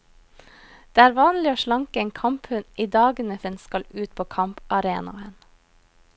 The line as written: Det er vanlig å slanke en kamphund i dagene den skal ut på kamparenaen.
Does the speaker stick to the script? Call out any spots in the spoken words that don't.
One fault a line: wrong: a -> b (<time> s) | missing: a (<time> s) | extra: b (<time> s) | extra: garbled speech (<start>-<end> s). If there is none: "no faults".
no faults